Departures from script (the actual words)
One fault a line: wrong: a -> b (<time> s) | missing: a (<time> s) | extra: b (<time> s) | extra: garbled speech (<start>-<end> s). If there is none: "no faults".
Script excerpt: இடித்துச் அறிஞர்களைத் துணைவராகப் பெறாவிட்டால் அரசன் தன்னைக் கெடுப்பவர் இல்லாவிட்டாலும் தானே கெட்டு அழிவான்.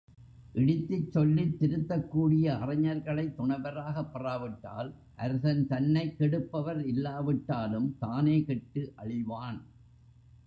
extra: சொல்லித் திருத்தக்கூடிய (1.1 s)